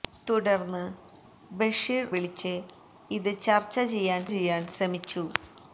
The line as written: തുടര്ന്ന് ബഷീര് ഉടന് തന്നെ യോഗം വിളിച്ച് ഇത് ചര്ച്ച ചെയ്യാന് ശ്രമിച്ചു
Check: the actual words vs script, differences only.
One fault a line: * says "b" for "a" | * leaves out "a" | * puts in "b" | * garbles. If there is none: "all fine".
* leaves out "ഉടന് തന്നെ യോഗം"
* puts in "ചെയ്യാന്"